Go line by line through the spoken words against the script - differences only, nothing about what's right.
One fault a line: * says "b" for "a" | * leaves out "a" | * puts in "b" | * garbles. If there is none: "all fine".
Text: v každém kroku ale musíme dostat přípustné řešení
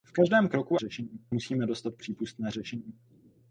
* says "řešení" for "ale"